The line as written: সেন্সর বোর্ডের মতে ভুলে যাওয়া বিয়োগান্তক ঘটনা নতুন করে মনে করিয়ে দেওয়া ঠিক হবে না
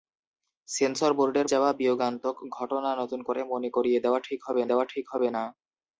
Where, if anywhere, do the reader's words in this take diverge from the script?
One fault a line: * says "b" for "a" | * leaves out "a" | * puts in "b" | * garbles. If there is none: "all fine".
* leaves out "মতে ভুলে"
* puts in "দেওয়া ঠিক হবে"